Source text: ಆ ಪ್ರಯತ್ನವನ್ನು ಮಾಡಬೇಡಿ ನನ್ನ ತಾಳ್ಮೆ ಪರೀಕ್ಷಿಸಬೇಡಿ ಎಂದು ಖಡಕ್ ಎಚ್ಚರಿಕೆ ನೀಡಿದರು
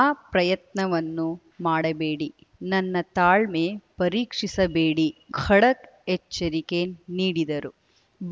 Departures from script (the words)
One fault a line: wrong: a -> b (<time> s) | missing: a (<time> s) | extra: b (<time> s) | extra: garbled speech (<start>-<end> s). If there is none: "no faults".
missing: ಎಂದು (5.1 s)